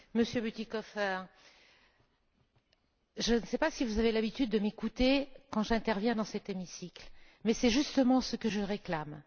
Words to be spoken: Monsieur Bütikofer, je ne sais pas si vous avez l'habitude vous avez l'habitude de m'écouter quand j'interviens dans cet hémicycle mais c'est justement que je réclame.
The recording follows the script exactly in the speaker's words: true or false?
false